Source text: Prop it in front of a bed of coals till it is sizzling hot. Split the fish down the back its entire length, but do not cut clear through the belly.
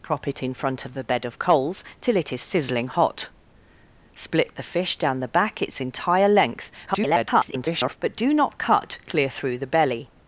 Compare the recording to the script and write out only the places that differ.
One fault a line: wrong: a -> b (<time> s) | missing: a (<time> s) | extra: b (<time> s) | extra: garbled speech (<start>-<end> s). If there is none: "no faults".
extra: garbled speech (6.9-8.0 s)